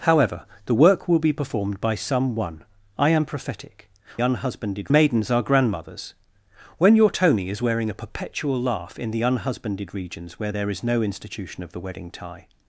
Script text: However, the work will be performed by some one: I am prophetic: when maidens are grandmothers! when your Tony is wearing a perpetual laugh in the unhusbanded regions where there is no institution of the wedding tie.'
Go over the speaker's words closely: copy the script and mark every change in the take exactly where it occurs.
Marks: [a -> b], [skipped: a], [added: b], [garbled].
However, the work will be performed by some one: I am prophetic: [when -> unhusbanded] maidens are grandmothers! when your Tony is wearing a perpetual laugh in the unhusbanded regions where there is no institution of the wedding tie.'